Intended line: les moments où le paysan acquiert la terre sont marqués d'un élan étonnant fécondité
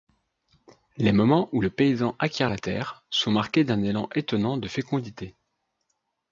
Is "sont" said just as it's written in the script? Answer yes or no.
yes